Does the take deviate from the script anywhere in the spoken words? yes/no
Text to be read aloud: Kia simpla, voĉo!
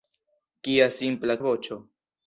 no